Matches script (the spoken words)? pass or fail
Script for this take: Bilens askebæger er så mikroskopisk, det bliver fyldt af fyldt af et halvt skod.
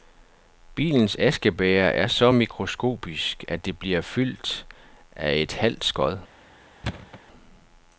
fail